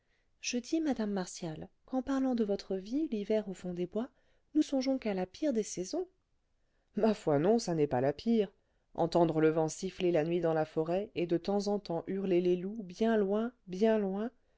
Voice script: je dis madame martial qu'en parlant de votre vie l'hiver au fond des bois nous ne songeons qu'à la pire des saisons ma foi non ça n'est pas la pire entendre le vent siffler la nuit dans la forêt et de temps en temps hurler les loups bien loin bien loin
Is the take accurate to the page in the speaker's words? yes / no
no